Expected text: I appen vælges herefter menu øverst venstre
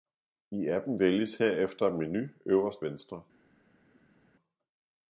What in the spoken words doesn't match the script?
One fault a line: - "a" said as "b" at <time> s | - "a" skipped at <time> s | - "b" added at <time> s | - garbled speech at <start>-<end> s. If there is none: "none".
none